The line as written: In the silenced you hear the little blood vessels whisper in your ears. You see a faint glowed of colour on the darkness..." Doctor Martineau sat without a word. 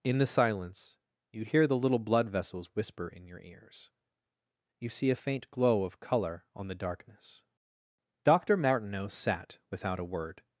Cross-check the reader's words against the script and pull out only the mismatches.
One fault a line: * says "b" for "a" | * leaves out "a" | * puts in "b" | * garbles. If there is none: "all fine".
* says "silence" for "silenced"
* says "glow" for "glowed"